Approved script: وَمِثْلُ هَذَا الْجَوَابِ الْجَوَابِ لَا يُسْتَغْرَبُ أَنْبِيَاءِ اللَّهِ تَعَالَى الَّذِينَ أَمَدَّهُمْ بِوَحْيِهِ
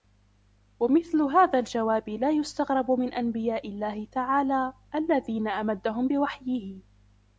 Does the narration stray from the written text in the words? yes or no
yes